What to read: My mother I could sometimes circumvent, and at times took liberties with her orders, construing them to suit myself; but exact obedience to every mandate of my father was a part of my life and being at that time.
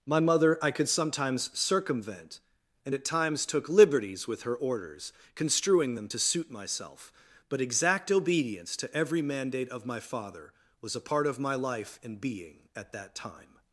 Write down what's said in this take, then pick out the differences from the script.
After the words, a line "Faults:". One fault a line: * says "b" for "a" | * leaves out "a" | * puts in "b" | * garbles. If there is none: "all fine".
My mother I could sometimes circumvent, and at times took liberties with her orders, construing them to suit myself; but exact obedience to every mandate of my father was a part of my life and being at that time.
Faults:
all fine